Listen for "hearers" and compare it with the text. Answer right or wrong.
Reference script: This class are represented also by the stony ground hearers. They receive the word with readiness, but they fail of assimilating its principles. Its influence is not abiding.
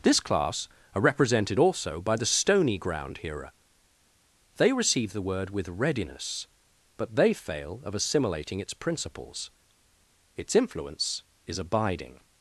wrong